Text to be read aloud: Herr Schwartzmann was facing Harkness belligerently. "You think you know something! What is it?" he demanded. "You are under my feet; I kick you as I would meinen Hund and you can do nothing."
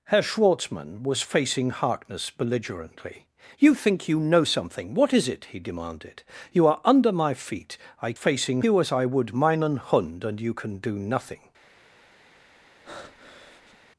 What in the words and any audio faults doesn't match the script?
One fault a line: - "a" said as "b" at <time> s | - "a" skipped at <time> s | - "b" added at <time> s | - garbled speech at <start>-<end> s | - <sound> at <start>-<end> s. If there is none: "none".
- "kick" said as "facing" at 8.1 s
- breath at 12.8-13.8 s